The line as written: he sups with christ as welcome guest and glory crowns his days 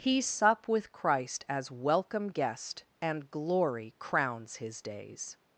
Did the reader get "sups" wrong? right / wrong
wrong